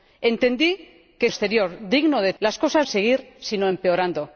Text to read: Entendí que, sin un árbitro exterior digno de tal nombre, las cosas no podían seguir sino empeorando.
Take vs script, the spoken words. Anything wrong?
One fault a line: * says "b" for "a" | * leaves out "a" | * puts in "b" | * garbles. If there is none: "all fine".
* leaves out "sin un árbitro"
* leaves out "tal nombre"
* leaves out "no podían"